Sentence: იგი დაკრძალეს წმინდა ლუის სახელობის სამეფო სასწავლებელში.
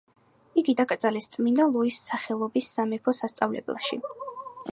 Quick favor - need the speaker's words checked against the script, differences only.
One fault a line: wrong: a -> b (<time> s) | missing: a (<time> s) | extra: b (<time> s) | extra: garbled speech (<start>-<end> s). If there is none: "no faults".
no faults